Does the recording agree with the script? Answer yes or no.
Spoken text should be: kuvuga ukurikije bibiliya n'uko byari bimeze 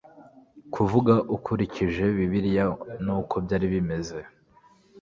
yes